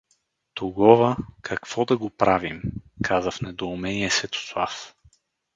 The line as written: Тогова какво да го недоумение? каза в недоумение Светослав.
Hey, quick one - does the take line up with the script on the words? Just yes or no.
no